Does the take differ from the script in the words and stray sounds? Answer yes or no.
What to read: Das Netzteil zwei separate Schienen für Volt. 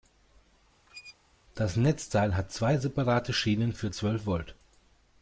yes